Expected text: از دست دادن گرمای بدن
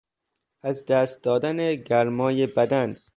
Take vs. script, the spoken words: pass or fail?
pass